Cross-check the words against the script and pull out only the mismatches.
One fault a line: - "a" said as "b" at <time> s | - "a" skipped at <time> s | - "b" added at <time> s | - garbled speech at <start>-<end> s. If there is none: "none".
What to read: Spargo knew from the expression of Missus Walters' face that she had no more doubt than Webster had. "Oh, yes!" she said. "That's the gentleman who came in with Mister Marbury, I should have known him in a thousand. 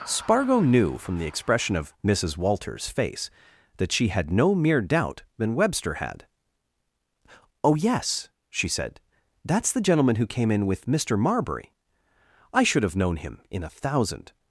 - "more" said as "mere" at 4.5 s